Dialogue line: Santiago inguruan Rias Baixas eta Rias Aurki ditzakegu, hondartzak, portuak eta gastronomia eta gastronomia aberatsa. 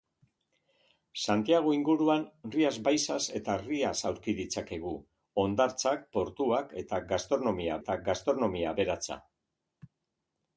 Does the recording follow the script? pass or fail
pass